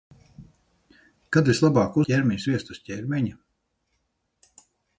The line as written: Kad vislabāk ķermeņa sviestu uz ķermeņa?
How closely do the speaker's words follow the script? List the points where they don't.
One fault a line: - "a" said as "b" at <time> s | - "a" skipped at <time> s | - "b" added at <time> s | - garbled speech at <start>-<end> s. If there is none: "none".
none